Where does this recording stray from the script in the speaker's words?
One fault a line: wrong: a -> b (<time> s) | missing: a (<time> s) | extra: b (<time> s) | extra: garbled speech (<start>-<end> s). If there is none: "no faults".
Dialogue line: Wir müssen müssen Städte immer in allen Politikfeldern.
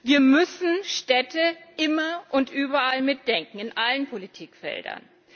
missing: müssen (0.8 s)
extra: und überall mitdenken (2.3 s)